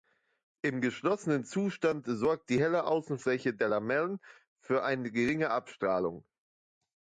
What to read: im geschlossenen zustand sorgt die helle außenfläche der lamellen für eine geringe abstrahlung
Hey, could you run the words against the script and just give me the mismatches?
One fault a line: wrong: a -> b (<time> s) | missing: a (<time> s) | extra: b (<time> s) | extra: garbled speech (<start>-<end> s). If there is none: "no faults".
no faults